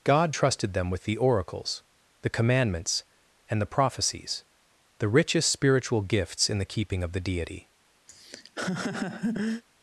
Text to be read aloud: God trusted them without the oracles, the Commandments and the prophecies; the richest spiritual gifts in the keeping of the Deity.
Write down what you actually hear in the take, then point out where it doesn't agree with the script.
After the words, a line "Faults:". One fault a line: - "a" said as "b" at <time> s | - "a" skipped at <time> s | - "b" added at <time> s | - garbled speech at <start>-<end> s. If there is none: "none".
God trusted them with the oracles, the Commandments and the prophecies; the richest spiritual gifts in the keeping of the Deity.
Faults:
- "without" said as "with" at 0.9 s